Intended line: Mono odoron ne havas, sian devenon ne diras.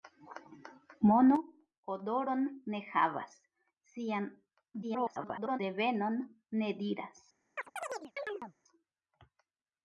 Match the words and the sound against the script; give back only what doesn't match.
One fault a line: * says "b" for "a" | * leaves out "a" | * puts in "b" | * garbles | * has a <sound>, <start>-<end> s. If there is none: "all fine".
* garbles
* has a chirp, 7.6-8.5 s